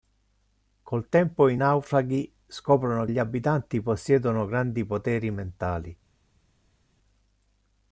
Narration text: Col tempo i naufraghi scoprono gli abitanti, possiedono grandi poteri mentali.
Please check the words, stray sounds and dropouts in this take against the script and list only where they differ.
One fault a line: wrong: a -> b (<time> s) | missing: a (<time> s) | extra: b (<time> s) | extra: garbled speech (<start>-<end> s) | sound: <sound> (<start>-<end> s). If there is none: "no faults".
no faults